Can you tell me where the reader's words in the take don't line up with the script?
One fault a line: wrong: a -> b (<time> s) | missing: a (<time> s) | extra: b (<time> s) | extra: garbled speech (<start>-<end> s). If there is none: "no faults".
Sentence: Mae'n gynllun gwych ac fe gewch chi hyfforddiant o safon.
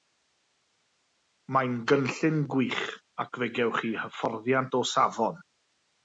no faults